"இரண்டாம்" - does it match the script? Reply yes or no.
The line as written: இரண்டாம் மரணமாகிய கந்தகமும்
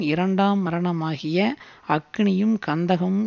yes